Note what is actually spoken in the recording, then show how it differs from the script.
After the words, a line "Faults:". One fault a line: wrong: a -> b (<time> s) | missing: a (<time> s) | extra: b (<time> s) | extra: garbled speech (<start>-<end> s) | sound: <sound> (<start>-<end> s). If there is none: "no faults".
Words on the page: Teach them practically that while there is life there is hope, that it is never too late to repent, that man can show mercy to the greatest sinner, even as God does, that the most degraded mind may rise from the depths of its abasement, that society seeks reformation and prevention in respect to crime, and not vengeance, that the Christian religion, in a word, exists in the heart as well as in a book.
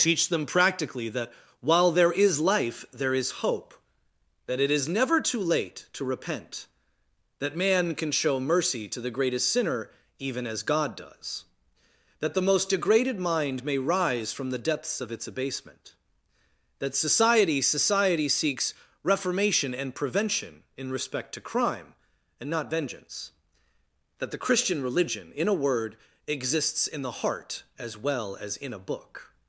Teach them practically that while there is life there is hope, that it is never too late to repent, that man can show mercy to the greatest sinner, even as God does, that the most degraded mind may rise from the depths of its abasement, that society society seeks reformation and prevention in respect to crime, and not vengeance, that the Christian religion, in a word, exists in the heart as well as in a book.
Faults:
extra: society (17.6 s)